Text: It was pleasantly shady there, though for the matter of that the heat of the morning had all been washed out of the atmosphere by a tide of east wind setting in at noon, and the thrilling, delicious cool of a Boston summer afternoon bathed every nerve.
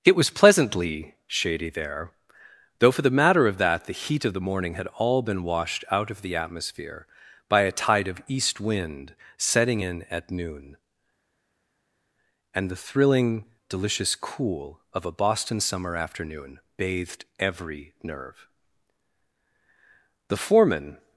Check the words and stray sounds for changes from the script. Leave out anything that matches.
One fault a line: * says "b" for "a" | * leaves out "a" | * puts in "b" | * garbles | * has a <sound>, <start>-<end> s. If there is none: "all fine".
* puts in "The foreman"